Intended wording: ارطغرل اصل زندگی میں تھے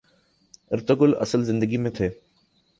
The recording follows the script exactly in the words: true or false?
true